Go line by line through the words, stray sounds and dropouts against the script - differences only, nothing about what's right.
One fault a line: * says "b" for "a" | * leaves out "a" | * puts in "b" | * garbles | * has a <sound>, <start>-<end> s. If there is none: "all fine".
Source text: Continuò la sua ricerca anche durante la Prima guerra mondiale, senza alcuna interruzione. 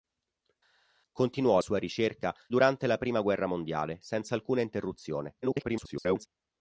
* leaves out "la"
* leaves out "anche"
* garbles